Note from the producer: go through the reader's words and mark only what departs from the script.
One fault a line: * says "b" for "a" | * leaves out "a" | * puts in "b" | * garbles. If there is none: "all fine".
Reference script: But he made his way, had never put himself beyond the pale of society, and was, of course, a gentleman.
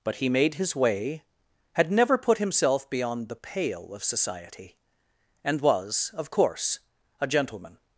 all fine